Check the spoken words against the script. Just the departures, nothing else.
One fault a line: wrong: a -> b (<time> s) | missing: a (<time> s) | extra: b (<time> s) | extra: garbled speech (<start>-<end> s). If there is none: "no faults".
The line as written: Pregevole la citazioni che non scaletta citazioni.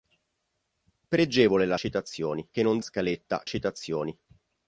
no faults